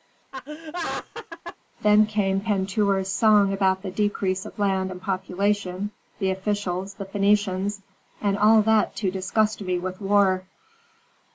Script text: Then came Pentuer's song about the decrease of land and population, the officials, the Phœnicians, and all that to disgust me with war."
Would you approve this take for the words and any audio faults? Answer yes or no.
no